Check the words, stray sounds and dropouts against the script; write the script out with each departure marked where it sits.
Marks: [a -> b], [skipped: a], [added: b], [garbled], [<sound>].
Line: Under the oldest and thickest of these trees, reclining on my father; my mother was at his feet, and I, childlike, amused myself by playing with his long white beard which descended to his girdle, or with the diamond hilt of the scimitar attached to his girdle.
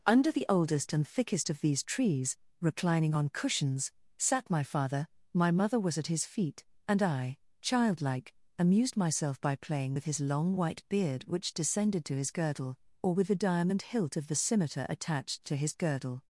Under the oldest and thickest of these trees, reclining on [added: cushions sat] my father; my mother was at his feet, and I, childlike, amused myself by playing with his long white beard which descended to his girdle, or with the diamond hilt of the scimitar attached to his girdle.